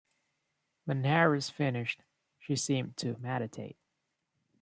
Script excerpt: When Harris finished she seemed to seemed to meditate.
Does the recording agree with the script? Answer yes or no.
no